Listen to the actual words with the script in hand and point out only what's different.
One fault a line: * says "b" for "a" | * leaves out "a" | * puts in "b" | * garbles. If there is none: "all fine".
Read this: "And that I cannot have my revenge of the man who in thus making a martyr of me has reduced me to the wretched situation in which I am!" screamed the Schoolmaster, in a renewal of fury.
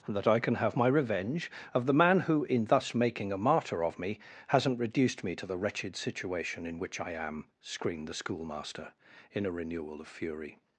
* says "can" for "cannot"
* says "hasn't" for "has"